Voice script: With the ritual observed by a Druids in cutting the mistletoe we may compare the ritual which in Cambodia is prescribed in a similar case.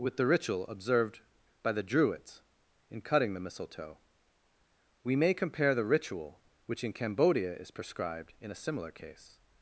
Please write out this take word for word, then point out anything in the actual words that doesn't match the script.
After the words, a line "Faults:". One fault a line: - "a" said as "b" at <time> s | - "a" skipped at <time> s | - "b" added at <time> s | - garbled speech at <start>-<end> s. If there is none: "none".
With the ritual observed by the Druids in cutting the mistletoe we may compare the ritual which in Cambodia is prescribed in a similar case.
Faults:
- "a" said as "the" at 1.7 s